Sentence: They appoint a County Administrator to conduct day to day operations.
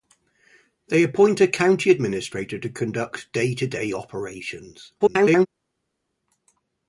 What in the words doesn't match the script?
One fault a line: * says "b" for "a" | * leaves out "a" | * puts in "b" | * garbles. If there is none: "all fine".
* garbles